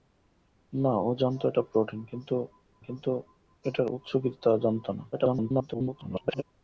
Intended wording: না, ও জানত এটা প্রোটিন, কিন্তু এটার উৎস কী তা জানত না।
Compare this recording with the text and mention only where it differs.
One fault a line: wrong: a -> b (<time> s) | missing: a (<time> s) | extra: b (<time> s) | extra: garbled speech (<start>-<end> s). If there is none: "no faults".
extra: কিন্তু (2.8 s)
extra: garbled speech (5.1-6.4 s)